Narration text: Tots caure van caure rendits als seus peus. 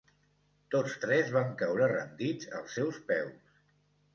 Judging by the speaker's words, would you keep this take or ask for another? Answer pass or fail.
fail